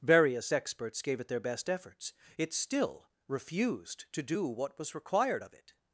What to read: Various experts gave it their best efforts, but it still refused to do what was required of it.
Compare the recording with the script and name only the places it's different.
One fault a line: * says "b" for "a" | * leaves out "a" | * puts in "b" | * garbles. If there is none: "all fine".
* leaves out "but"